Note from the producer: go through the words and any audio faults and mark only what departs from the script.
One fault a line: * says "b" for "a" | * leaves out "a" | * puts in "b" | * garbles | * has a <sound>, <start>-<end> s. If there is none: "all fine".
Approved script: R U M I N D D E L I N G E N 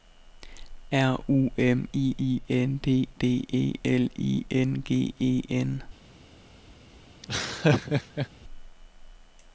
* puts in "I"
* has a laugh, 7.2-8.3 s